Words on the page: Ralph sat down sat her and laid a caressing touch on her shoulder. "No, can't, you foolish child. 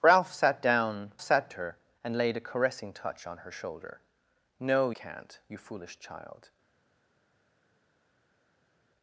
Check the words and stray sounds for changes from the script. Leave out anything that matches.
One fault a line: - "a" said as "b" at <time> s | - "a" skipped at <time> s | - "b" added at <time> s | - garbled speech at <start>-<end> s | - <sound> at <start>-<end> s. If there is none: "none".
none